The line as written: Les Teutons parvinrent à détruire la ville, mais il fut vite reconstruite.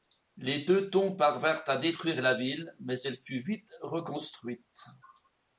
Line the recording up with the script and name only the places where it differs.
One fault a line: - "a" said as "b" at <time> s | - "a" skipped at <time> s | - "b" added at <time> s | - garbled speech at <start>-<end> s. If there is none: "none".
- "il" said as "elle" at 3.0 s